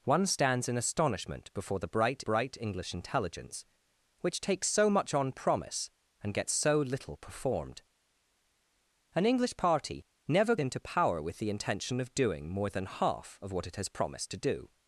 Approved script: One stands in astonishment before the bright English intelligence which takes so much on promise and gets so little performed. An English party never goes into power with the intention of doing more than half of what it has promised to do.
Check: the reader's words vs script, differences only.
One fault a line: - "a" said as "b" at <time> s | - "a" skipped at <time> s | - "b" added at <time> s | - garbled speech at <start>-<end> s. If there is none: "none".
- "bright" added at 2.2 s
- "goes" skipped at 10.6 s